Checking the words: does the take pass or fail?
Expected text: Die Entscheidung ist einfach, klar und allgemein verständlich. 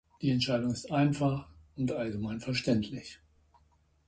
fail